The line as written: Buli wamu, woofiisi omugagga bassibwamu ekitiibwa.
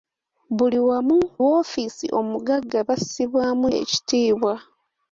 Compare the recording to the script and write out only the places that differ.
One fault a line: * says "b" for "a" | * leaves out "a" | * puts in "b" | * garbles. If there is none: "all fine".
all fine